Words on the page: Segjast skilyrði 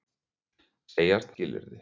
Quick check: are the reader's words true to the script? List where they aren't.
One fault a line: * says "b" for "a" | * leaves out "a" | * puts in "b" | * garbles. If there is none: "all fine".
all fine